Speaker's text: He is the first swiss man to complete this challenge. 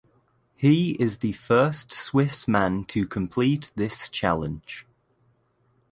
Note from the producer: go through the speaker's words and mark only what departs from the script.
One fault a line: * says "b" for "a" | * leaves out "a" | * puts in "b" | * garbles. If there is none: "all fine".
all fine